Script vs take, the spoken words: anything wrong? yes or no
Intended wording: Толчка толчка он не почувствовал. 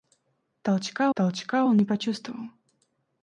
no